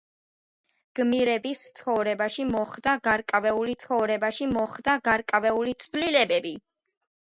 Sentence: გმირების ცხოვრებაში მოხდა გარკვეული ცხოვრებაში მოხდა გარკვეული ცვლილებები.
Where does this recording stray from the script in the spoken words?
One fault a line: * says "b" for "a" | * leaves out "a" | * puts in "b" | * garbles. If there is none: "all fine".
all fine